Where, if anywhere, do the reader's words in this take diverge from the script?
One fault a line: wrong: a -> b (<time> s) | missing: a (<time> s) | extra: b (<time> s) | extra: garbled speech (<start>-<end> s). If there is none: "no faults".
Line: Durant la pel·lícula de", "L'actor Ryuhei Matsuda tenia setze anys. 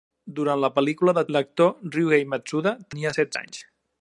no faults